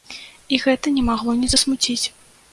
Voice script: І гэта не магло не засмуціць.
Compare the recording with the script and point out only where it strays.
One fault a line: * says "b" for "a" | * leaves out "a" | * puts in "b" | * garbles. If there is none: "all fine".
all fine